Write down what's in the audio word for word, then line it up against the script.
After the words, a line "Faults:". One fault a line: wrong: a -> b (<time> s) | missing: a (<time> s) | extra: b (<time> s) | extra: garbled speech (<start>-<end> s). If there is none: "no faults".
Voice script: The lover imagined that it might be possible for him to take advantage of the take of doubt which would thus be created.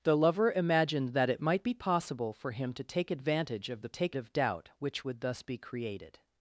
The lover imagined that it might be possible for him to take advantage of the take of doubt which would thus be created.
Faults:
no faults